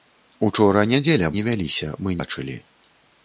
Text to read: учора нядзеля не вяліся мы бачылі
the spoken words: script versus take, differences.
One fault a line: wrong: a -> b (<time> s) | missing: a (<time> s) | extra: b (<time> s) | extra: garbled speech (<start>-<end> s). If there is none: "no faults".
no faults